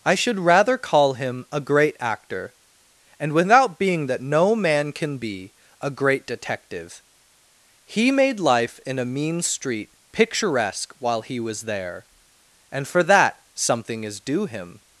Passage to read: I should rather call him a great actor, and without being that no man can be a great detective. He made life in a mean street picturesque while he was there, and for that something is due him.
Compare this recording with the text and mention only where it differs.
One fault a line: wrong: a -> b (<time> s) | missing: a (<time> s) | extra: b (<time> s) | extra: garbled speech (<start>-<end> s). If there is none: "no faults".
no faults